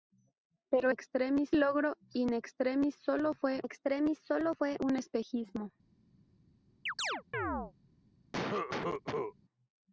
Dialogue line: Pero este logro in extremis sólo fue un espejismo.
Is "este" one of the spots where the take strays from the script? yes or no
yes